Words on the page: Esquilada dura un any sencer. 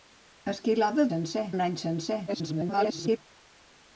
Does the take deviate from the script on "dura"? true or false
true